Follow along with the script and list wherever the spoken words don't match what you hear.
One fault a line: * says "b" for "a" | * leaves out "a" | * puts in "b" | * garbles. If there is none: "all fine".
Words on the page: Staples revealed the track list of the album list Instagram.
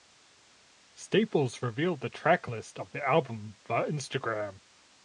* says "via" for "list"